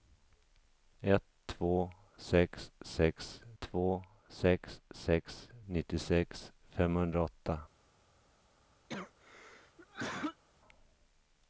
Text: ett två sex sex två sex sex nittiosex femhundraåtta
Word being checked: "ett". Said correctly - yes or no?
yes